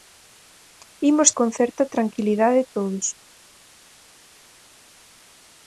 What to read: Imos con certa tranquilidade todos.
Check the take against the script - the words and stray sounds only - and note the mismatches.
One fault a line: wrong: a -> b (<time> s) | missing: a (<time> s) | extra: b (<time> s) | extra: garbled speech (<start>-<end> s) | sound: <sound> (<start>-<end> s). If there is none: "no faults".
no faults